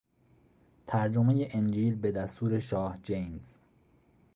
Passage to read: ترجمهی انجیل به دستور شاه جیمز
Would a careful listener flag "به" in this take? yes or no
no